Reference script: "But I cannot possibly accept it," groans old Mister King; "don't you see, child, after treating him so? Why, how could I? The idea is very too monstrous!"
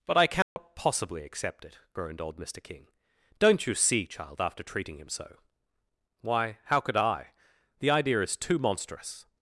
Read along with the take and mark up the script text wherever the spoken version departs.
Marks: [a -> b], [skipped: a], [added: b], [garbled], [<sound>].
"But I cannot [dropout] possibly accept it," [groans -> groaned] old Mister King; "don't you see, child, after treating him so? Why, how could I? The idea is [skipped: very] too monstrous!"